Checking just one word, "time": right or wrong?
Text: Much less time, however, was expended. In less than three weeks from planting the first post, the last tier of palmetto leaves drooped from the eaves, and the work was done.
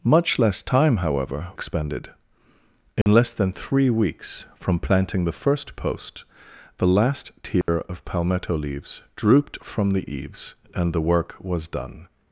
right